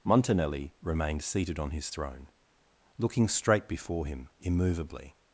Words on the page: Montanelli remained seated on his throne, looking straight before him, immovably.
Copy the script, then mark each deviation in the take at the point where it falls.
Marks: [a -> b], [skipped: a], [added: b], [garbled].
Montanelli remained seated on his throne, looking straight before him, immovably.